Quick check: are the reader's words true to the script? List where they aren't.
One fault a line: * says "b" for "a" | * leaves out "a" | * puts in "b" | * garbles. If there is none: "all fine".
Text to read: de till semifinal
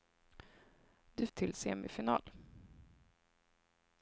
all fine